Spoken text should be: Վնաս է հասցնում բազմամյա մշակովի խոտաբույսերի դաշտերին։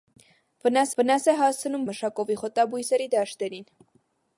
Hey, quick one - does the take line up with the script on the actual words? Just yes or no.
no